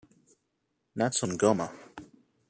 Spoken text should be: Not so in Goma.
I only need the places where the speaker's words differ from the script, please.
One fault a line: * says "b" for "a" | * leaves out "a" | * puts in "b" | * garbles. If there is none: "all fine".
all fine